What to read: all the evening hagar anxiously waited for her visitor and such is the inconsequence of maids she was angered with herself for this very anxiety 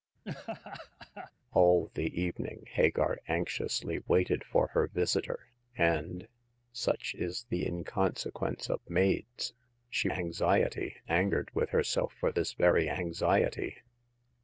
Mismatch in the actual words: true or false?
true